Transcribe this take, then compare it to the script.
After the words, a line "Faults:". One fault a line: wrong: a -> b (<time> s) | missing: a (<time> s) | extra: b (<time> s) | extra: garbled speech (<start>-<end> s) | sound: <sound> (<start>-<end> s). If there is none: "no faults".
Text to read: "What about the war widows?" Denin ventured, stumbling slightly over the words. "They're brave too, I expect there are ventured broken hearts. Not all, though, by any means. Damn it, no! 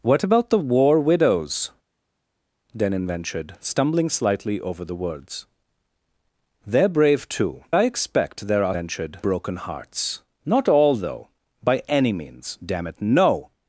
"What about the war widows?" Denin ventured, stumbling slightly over the words. "They're brave too, I expect there are ventured broken hearts. Not all, though, by any means. Damn it, no!
Faults:
no faults